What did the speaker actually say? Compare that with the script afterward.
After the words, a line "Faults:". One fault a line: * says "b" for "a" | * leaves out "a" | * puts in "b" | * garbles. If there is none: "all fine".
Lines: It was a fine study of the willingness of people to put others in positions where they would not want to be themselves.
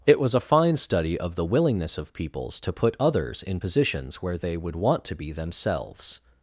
It was a fine study of the willingness of peoples to put others in positions where they would want to be themselves.
Faults:
* says "peoples" for "people"
* leaves out "not"